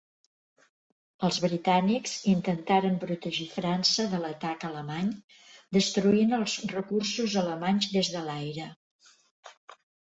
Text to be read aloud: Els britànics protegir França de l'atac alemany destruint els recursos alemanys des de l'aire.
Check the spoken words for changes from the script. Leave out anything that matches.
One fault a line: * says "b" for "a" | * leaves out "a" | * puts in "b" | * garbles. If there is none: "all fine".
* puts in "intentaren"